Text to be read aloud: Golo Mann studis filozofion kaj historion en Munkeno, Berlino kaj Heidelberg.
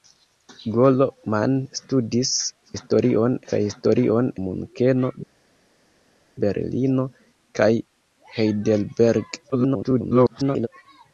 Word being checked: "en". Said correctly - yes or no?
no